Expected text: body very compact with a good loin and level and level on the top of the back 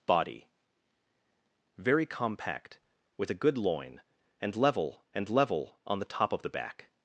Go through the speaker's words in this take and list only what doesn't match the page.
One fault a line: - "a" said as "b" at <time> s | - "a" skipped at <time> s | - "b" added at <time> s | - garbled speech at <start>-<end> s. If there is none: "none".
none